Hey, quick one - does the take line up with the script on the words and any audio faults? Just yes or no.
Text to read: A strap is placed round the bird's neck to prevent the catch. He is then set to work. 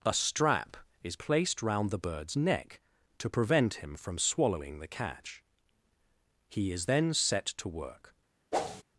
no